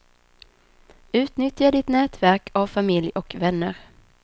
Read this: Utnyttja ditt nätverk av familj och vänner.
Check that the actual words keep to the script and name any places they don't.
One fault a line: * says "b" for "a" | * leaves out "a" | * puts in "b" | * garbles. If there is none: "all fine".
all fine